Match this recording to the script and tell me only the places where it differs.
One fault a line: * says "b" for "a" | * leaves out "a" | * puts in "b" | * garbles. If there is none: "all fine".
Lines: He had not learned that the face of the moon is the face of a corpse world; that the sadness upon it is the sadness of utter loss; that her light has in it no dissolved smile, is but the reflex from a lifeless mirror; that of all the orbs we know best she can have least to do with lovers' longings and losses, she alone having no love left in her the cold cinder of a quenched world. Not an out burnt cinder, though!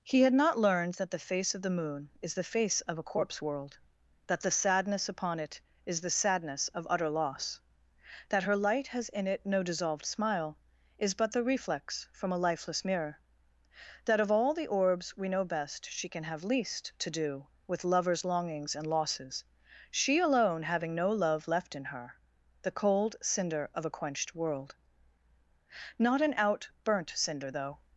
all fine